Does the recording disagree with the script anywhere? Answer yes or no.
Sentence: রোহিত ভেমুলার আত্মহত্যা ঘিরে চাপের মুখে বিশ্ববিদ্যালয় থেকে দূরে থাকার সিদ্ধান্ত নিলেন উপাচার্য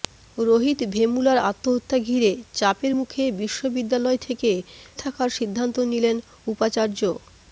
yes